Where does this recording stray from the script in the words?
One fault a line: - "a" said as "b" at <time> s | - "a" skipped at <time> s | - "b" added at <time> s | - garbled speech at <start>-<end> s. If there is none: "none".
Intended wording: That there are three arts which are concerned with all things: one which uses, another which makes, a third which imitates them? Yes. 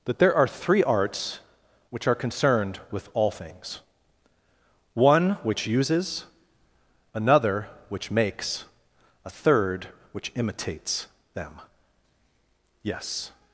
none